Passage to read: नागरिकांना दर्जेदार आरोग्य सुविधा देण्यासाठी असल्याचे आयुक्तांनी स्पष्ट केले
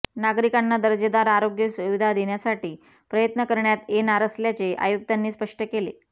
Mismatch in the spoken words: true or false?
true